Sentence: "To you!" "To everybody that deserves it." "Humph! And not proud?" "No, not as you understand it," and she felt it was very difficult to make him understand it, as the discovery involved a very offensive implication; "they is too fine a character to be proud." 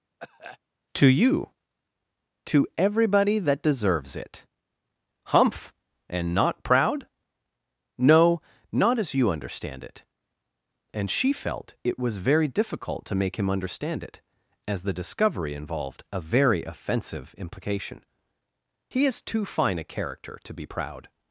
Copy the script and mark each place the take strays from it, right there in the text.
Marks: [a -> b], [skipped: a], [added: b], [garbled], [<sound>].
[cough] "To you!" "To everybody that deserves it." "Humph! And not proud?" "No, not as you understand it," and she felt it was very difficult to make him understand it, as the discovery involved a very offensive implication; ["they -> he] is too fine a character to be proud."